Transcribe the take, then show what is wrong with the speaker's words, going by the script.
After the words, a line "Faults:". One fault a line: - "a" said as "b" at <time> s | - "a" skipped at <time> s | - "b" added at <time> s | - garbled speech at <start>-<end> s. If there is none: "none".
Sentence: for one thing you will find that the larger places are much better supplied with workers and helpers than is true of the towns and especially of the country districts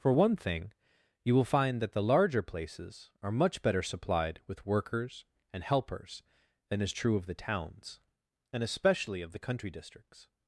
for one thing you will find that the larger places are much better supplied with workers and helpers than is true of the towns and especially of the country districts
Faults:
none